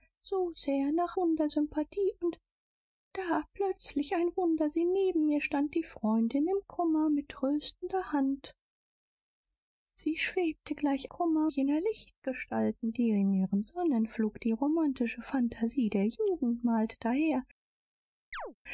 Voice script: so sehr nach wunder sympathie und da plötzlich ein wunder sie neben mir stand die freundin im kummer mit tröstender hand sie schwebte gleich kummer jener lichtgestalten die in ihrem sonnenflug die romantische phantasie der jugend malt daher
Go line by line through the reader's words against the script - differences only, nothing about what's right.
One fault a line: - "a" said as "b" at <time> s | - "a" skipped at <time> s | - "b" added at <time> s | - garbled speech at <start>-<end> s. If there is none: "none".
none